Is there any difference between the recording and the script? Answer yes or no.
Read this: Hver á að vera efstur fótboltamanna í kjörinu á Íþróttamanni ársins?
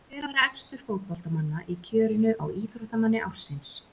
yes